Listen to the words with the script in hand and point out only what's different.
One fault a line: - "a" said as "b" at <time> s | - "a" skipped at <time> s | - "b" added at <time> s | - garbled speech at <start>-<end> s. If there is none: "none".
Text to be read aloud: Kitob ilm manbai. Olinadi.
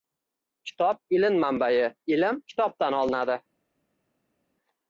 - "Ilm kitobdan" added at 2.1 s